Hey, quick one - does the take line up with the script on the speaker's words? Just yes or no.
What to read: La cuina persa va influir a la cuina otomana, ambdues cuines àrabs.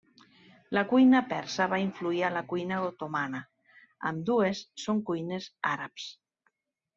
no